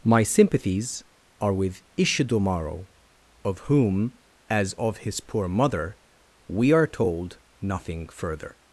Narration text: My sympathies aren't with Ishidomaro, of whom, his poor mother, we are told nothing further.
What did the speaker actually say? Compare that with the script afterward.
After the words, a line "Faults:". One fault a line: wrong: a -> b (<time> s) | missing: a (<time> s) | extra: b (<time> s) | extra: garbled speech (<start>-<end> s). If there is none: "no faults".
My sympathies are with Ishidomaro, of whom, as of his poor mother, we are told nothing further.
Faults:
wrong: aren't -> are (1.4 s)
extra: as of (4.5 s)